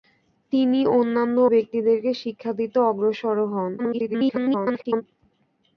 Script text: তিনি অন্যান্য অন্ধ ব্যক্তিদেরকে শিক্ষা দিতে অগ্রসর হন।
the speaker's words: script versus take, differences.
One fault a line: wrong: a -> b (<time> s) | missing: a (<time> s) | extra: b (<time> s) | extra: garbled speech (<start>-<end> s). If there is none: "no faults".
missing: অন্ধ (1.4 s)
extra: garbled speech (3.8-5.0 s)